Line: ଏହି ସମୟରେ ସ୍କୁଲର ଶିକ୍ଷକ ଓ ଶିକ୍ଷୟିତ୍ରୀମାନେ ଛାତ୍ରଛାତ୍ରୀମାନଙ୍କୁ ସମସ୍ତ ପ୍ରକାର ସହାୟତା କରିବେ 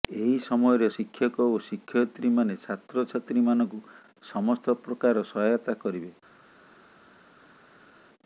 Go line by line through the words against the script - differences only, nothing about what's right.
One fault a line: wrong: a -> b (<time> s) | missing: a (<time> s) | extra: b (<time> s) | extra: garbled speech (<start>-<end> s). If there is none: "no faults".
missing: ସ୍କୁଲର (0.9 s)